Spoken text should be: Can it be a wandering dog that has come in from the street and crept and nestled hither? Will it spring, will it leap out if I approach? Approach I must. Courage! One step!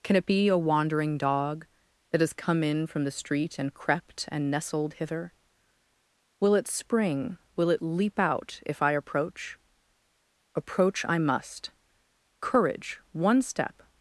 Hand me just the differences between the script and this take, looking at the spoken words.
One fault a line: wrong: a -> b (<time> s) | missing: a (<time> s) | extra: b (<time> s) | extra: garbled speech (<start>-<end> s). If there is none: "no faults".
no faults